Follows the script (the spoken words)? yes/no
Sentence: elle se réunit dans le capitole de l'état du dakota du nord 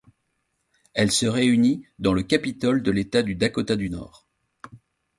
yes